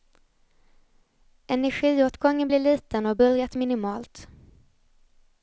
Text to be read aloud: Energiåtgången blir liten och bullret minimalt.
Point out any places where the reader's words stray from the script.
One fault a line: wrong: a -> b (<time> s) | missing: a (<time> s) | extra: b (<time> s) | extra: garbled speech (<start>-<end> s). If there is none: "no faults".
no faults